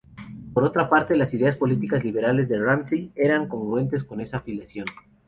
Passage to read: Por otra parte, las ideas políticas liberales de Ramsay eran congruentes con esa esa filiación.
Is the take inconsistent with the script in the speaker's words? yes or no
yes